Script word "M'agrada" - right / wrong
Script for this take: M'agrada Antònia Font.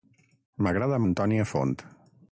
right